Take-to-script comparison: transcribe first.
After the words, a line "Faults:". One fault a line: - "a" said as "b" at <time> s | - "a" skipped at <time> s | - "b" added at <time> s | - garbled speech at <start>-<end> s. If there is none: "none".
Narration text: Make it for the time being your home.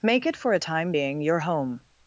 Make it for a time being your home.
Faults:
- "the" said as "a" at 0.5 s